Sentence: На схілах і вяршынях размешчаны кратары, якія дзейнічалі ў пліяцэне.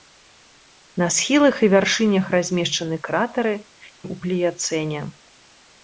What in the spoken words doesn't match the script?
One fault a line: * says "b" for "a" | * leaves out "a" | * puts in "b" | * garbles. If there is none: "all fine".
* leaves out "якія дзейнічалі"